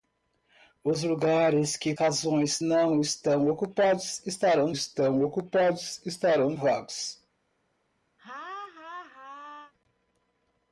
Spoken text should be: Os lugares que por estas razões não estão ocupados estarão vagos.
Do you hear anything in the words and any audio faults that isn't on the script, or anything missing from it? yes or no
yes